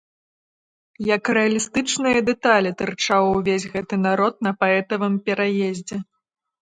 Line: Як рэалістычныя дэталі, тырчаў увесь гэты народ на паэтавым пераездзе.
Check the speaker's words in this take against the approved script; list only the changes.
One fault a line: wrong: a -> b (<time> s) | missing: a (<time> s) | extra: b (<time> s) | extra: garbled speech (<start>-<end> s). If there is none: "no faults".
no faults